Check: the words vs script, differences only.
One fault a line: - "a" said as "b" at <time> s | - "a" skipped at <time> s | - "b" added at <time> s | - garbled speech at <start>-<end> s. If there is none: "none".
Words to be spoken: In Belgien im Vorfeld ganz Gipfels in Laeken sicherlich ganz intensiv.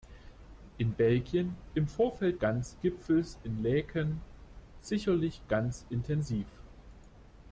none